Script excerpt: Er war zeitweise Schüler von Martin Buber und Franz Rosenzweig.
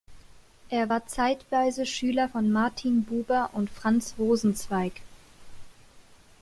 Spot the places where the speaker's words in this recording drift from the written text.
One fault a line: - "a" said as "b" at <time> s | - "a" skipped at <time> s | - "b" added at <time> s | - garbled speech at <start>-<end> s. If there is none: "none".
none